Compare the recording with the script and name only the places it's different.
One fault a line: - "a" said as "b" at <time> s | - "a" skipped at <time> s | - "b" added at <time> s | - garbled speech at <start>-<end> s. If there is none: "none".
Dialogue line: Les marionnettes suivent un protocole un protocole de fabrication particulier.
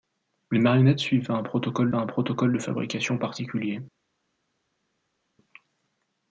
none